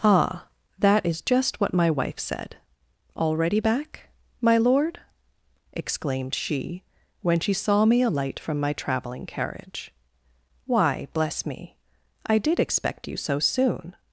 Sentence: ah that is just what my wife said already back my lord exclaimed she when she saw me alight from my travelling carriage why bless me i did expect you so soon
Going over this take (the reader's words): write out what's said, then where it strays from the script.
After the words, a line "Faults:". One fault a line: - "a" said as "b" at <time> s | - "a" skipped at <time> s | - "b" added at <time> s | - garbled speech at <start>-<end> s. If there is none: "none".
ah that is just what my wife said already back my lord exclaimed she when she saw me alight from my travelling carriage why bless me i did expect you so soon
Faults:
none